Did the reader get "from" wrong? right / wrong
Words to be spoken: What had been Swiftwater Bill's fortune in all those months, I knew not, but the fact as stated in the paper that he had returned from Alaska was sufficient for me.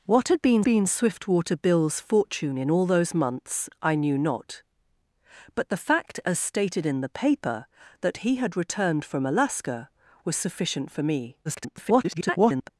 right